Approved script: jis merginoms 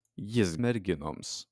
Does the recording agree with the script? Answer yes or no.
yes